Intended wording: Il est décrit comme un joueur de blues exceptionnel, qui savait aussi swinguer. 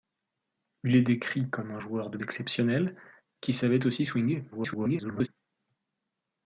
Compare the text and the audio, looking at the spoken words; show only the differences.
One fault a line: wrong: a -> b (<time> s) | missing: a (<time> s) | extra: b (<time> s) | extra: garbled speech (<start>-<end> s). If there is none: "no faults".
missing: blues (2.2 s)
extra: garbled speech (4.5-5.3 s)